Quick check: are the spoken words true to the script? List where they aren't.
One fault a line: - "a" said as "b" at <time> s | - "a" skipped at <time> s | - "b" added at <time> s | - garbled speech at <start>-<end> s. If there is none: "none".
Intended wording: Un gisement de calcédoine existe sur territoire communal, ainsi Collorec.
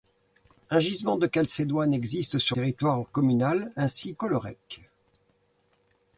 none